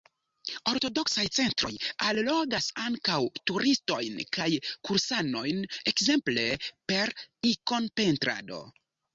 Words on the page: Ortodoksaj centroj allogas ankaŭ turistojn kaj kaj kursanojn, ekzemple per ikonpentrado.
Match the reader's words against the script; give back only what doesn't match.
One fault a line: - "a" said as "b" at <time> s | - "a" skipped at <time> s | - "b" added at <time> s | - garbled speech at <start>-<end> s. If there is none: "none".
- "kaj" skipped at 4.5 s